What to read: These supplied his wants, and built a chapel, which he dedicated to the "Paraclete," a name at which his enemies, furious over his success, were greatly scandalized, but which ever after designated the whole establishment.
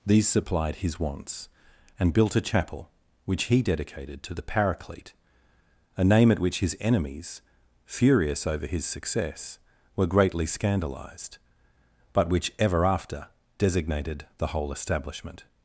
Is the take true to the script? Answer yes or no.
yes